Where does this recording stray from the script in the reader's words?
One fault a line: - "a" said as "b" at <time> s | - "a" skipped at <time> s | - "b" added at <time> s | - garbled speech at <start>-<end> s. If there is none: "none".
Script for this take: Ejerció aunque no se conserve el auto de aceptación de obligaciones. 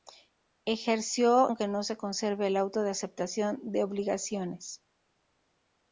none